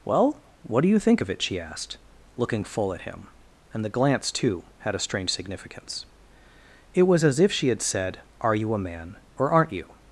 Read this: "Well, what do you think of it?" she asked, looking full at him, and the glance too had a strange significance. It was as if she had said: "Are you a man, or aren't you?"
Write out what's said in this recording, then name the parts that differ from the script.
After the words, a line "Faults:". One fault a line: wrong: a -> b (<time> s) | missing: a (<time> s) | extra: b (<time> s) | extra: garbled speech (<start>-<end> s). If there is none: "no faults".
"Well, what do you think of it?" she asked, looking full at him, and the glance too had a strange significance. It was as if she had said: "Are you a man, or aren't you?"
Faults:
no faults